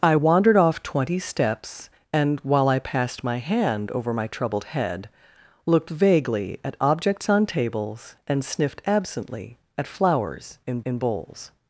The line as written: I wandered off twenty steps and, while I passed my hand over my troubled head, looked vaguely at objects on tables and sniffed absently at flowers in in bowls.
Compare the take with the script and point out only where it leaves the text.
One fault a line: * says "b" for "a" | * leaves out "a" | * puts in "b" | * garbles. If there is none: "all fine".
all fine